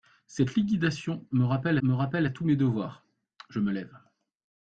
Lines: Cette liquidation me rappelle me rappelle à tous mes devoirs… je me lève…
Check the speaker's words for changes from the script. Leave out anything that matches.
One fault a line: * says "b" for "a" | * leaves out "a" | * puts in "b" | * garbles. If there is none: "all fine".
all fine